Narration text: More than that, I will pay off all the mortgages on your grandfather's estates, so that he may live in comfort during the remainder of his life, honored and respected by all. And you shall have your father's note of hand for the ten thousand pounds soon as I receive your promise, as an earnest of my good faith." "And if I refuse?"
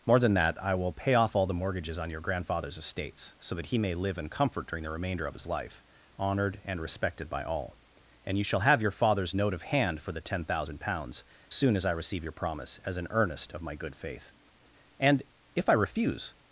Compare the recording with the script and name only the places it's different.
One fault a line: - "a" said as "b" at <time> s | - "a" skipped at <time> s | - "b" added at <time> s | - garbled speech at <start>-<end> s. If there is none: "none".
none